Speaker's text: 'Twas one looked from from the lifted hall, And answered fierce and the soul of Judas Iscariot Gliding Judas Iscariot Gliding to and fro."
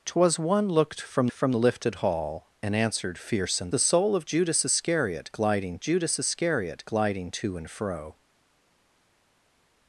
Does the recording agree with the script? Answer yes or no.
yes